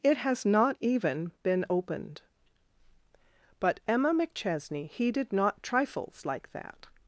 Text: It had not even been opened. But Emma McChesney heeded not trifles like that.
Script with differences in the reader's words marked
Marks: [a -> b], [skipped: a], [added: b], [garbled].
It [had -> has] not even been opened. But Emma McChesney heeded not trifles like that.